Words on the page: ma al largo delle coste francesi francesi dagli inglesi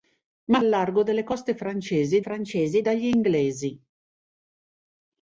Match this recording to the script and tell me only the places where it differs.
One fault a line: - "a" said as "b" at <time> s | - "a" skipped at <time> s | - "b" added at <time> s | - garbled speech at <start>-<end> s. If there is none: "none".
none